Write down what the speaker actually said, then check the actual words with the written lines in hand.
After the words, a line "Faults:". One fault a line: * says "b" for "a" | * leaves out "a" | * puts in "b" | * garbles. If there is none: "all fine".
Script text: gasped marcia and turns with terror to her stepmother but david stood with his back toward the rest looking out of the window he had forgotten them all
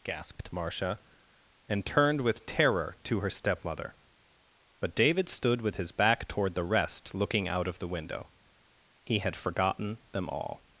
gasped marcia and turned with terror to her stepmother but david stood with his back toward the rest looking out of the window he had forgotten them all
Faults:
* says "turned" for "turns"